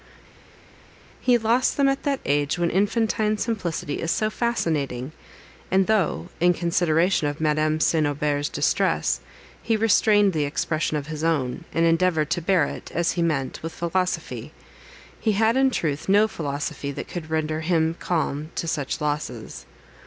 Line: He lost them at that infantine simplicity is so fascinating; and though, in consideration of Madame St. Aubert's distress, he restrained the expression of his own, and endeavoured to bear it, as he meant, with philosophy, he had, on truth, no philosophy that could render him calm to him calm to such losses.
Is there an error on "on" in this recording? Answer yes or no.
yes